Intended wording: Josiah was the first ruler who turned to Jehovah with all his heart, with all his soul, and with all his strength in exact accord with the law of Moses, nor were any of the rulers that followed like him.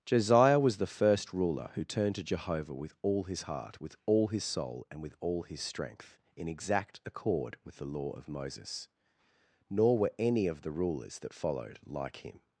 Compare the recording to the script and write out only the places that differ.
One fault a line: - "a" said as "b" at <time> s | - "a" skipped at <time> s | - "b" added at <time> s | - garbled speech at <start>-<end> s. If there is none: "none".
none